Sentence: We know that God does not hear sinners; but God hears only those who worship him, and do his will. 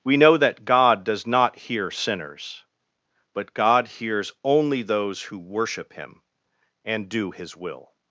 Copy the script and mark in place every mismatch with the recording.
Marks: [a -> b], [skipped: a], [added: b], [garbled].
We know that God does not hear sinners; but God hears only those who worship him, and do his will.